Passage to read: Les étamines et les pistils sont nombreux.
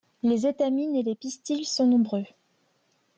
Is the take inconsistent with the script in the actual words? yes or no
no